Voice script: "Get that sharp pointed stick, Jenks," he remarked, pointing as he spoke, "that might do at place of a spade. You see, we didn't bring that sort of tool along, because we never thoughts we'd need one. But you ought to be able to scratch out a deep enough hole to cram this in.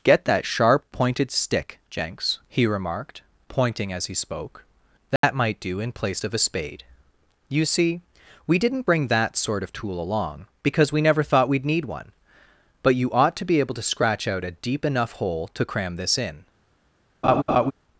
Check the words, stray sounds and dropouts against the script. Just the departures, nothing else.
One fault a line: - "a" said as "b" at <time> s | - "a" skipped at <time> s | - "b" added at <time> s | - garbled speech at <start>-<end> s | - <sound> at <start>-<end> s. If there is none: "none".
- dropout at 5.2-5.2 s
- "at" said as "in" at 5.8 s
- "thoughts" said as "thought" at 11.2 s
- laugh at 17.2-17.7 s